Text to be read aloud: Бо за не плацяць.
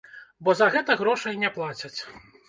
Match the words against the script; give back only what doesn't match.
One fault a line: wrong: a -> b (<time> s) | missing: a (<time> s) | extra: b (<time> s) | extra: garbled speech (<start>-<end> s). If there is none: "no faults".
extra: гэта грошай (0.7 s)